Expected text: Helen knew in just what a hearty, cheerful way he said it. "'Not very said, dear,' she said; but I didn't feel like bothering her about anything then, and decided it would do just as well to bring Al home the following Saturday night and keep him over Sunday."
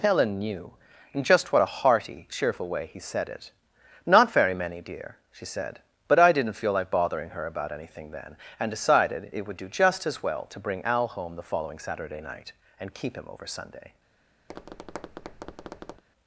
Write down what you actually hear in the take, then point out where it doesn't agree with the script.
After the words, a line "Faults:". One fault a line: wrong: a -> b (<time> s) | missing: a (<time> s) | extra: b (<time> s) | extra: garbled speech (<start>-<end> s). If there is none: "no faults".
Helen knew in just what a hearty, cheerful way he said it. "'Not very many, dear,' she said; but I didn't feel like bothering her about anything then, and decided it would do just as well to bring Al home the following Saturday night and keep him over Sunday."
Faults:
wrong: said -> many (4.5 s)